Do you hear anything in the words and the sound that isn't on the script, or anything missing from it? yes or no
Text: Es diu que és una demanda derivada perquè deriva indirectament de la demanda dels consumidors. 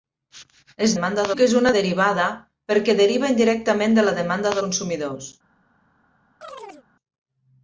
yes